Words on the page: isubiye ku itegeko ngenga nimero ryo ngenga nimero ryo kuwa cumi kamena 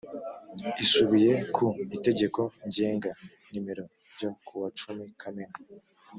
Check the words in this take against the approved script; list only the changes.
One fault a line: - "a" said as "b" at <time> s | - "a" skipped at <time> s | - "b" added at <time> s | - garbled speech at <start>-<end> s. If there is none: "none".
- "ngenga nimero ryo" skipped at 4.3 s